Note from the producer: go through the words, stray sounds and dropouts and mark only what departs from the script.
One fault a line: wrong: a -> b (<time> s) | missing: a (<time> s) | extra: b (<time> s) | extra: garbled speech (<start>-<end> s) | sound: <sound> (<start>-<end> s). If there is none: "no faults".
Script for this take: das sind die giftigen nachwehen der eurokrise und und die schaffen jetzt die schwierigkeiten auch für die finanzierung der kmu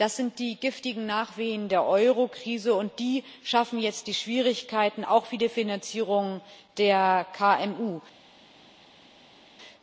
missing: und (3.0 s)